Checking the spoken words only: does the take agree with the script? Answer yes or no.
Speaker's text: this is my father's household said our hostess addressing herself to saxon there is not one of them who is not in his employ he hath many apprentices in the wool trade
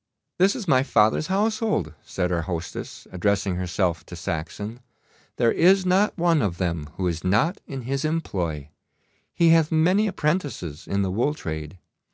yes